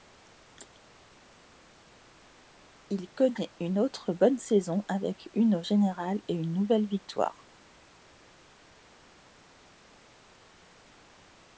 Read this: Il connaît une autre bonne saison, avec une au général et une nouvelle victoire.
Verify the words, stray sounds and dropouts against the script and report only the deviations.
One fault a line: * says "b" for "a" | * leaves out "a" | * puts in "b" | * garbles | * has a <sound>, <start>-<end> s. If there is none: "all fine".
all fine